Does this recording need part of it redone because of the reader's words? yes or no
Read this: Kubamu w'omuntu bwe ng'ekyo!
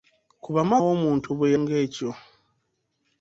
no